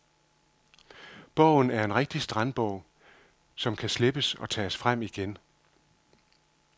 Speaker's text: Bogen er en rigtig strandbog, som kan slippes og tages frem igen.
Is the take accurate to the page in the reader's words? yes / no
yes